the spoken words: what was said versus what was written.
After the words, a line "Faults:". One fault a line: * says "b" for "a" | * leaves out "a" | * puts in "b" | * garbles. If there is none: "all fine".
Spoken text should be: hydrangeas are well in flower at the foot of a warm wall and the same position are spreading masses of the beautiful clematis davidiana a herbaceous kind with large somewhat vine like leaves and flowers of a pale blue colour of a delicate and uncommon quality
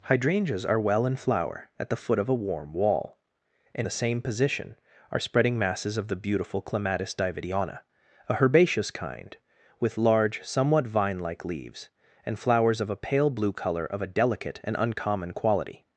hydrangeas are well in flower at the foot of a warm wall and the same position are spreading masses of the beautiful clematis davidiana a herbaceous kind with large somewhat vine like leaves and flowers of a pale blue colour of a delicate and uncommon quality
Faults:
all fine